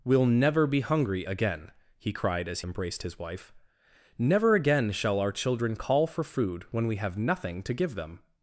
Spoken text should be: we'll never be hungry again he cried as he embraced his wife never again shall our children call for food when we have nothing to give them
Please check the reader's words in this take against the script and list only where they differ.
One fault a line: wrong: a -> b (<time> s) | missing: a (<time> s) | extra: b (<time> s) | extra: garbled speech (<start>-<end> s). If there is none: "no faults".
missing: he (2.6 s)